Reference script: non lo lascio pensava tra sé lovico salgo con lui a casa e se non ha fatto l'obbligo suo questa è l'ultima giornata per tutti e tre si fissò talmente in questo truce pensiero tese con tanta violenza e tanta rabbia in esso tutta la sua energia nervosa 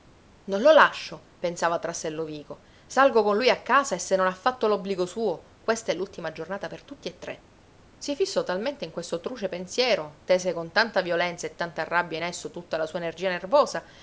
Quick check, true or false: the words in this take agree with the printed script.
true